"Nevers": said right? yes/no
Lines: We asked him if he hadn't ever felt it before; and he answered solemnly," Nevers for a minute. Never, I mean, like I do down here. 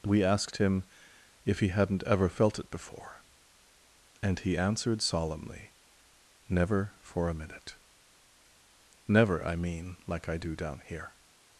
no